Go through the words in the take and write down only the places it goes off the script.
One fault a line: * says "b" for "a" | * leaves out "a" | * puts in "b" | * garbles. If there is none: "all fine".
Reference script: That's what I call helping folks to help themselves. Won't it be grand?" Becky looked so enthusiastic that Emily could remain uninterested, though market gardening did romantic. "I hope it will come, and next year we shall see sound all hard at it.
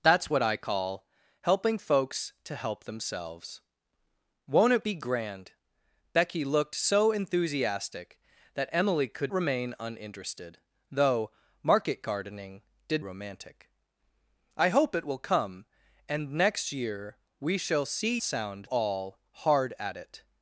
all fine